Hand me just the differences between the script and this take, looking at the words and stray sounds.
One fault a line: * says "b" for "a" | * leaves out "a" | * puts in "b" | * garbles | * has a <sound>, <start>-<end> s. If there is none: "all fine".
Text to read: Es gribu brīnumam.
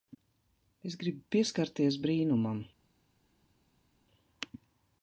* puts in "pieskarties"